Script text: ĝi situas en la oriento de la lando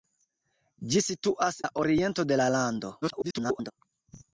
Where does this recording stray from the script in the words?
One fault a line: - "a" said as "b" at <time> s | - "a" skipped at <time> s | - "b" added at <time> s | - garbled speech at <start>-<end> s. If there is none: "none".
- "en" skipped at 1.6 s
- garbled speech at 3.0-3.7 s